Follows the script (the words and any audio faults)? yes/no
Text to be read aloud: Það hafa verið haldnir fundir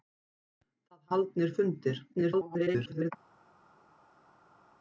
no